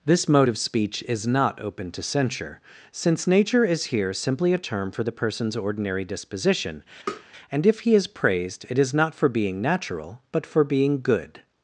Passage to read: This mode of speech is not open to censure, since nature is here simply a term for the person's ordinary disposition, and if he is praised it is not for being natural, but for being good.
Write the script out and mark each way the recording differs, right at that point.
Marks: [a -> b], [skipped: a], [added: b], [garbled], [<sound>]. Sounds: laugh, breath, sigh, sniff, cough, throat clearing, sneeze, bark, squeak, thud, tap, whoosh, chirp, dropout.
This mode of speech is not open to censure, since nature is here simply a term for the person's ordinary disposition, [tap] and if he is praised it is not for being natural, but for being good.